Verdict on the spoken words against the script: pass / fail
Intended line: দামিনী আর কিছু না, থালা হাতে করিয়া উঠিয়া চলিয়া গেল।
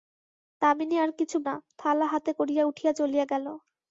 pass